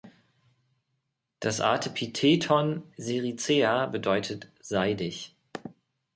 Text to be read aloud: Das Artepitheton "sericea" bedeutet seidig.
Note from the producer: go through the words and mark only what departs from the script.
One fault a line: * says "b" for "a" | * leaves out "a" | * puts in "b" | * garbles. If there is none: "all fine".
all fine